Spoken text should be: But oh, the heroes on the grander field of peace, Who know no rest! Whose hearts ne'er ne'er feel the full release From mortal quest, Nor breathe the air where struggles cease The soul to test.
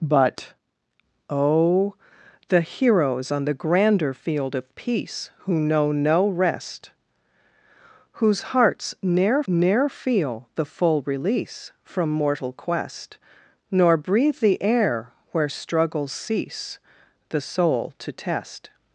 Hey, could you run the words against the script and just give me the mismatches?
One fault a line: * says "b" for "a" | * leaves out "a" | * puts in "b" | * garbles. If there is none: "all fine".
all fine